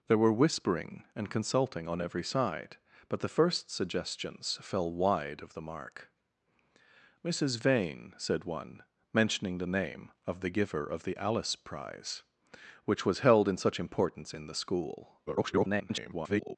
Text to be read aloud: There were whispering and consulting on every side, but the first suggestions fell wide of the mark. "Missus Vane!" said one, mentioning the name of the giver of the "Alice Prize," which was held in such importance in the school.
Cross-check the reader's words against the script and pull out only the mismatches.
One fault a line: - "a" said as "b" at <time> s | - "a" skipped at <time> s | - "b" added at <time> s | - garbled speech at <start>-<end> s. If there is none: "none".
- garbled speech at 15.3-16.6 s